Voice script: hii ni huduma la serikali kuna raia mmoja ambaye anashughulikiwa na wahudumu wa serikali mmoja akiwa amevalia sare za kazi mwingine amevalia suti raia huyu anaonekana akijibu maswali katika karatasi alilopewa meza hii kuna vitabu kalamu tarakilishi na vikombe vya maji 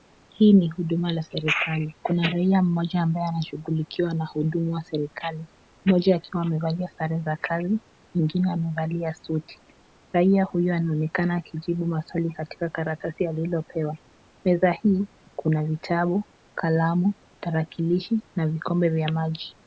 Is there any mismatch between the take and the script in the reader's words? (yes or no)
no